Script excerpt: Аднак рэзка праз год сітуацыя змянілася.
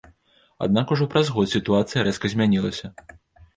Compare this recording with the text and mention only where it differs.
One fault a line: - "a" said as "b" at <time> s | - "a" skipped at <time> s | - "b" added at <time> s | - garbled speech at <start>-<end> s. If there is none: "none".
- "рэзка" said as "ужо" at 0.9 s
- "рэзка" added at 2.1 s